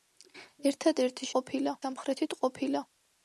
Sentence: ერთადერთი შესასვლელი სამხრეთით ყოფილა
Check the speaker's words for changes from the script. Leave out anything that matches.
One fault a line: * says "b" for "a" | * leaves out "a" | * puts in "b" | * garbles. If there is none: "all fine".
* says "ყოფილა" for "შესასვლელი"